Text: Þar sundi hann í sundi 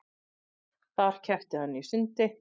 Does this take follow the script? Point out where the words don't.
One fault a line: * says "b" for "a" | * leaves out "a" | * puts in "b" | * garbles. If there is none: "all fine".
* says "keppti" for "sundi"